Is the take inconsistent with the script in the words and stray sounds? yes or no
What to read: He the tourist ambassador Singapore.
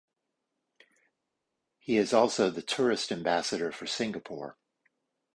yes